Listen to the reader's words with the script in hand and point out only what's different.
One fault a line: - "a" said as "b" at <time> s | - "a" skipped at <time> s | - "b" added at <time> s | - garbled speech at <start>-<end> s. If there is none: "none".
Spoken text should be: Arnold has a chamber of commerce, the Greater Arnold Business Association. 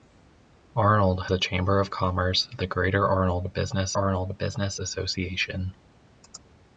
- "has" skipped at 1.2 s
- "Arnold Business" added at 3.9 s